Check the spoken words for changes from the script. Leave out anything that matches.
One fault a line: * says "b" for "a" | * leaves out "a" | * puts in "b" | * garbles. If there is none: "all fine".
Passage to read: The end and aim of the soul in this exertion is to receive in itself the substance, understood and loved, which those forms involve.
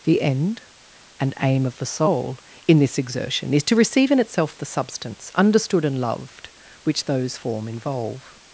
* says "form" for "forms"